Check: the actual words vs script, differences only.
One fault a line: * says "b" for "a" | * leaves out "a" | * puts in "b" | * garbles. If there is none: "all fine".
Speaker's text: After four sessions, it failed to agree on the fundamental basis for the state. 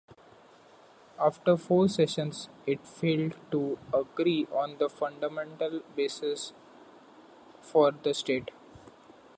all fine